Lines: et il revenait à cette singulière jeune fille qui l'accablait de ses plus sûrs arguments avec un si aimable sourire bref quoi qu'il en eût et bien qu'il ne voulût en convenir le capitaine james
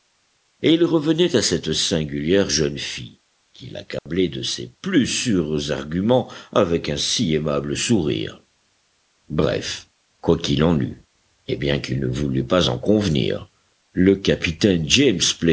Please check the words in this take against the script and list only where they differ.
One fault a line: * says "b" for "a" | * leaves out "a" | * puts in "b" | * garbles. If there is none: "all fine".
* puts in "pas"